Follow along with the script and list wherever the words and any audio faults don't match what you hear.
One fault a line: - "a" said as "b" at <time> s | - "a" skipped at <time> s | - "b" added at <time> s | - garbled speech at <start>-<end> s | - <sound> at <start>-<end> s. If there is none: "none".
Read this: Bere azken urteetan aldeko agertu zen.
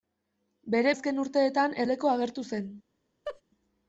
- laugh at 3.3-3.4 s